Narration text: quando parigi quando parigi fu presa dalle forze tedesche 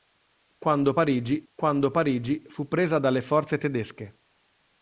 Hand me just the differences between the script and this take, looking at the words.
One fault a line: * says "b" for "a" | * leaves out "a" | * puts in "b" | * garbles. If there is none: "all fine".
all fine